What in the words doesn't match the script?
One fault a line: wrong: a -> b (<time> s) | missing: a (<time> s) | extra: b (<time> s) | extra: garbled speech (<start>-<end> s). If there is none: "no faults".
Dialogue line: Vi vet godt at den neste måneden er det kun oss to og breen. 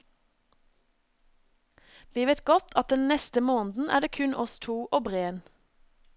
no faults